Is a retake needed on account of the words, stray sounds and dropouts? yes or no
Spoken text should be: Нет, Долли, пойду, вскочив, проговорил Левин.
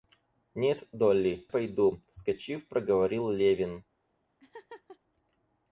yes